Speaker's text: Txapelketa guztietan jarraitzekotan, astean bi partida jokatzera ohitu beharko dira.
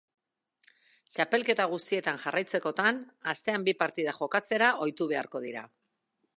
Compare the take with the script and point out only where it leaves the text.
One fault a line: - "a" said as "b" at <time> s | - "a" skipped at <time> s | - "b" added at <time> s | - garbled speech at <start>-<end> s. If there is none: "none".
none